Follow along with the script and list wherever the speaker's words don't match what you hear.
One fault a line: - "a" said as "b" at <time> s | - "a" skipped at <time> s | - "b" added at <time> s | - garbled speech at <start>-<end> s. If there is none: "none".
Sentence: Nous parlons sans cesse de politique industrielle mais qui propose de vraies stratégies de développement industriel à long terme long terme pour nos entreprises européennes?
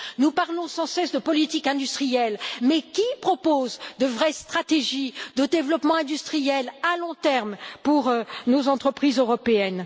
- "long terme" skipped at 7.6 s